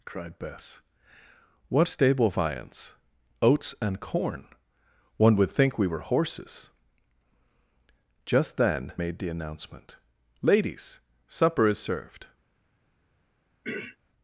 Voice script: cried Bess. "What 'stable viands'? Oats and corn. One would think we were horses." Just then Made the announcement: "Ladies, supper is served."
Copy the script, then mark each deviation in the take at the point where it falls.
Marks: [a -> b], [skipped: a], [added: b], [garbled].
cried Bess. "What 'stable viands'? Oats and corn. One would think we were horses." Just then Made the announcement: "Ladies, supper is served."